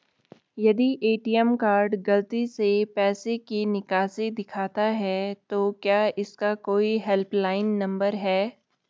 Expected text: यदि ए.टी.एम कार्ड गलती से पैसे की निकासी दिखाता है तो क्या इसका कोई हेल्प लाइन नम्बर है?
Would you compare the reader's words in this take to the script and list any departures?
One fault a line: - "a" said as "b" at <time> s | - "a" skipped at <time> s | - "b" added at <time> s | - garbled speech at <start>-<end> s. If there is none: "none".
none